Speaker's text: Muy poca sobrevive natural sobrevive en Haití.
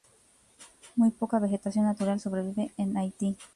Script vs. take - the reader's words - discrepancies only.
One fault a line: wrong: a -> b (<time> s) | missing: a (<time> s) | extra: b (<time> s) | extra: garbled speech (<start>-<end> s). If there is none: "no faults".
wrong: sobrevive -> vegetación (1.4 s)